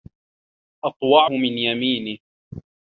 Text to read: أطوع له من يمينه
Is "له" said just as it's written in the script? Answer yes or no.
no